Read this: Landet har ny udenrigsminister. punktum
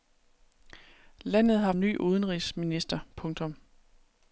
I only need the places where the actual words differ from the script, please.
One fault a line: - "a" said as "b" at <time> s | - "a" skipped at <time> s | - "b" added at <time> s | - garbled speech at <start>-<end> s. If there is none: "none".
none